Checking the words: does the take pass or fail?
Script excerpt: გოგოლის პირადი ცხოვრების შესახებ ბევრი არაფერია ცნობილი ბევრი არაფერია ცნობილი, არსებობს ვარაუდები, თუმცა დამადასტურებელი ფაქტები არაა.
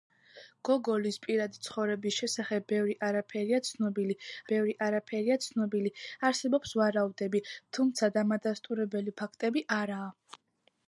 pass